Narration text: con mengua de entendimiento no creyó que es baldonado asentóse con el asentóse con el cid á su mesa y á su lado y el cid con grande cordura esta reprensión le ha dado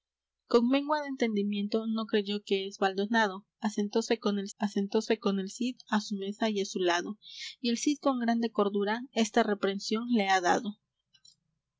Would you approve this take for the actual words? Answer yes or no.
yes